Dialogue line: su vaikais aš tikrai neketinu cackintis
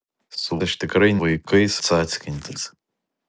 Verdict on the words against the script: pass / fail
fail